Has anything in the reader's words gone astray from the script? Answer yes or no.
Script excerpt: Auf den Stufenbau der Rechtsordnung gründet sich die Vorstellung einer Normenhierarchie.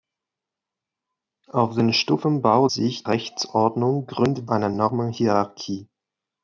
yes